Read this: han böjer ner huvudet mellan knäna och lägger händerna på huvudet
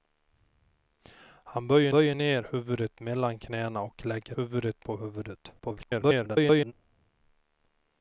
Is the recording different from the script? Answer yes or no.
yes